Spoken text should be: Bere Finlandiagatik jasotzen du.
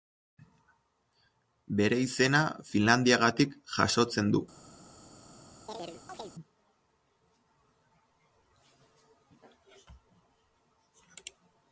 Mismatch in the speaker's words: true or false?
true